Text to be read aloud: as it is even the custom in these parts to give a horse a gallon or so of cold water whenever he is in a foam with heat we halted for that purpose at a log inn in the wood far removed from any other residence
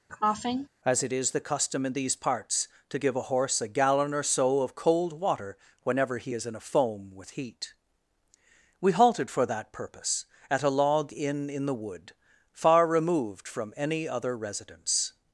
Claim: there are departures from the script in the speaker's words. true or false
true